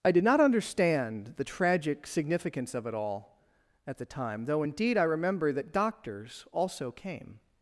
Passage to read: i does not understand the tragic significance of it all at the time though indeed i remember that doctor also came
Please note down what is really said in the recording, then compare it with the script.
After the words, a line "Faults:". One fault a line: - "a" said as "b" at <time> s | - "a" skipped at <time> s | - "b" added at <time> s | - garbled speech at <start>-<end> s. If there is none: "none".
i did not understand the tragic significance of it all at the time though indeed i remember that doctors also came
Faults:
- "does" said as "did" at 0.1 s
- "doctor" said as "doctors" at 5.7 s